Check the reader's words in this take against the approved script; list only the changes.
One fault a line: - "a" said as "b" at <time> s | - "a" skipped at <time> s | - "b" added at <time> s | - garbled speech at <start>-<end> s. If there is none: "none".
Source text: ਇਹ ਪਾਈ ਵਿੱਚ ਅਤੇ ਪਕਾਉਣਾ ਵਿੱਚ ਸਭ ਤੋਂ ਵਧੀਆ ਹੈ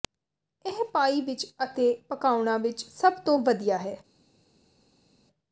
none